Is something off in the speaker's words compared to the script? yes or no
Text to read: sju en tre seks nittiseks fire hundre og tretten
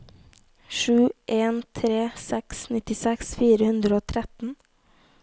no